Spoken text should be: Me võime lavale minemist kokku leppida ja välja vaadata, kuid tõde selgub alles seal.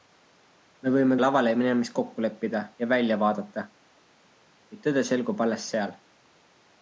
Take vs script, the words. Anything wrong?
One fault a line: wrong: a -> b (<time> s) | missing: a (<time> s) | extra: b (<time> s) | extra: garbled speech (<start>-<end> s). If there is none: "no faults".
no faults